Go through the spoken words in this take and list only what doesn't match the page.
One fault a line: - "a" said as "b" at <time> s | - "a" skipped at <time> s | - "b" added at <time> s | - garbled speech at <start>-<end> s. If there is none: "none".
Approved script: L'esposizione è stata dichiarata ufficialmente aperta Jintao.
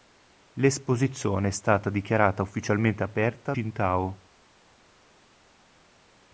none